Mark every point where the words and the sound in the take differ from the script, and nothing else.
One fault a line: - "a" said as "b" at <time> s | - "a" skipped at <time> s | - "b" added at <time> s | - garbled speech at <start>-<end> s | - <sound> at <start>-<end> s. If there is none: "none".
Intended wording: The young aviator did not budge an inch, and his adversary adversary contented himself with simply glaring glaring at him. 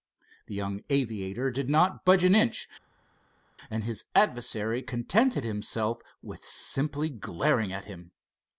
- "adversary" skipped at 4.8 s
- "glaring" skipped at 7.7 s